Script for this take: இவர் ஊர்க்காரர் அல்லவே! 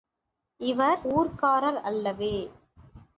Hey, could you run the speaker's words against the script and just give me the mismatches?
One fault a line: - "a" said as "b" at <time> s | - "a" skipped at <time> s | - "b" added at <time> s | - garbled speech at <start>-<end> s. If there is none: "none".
none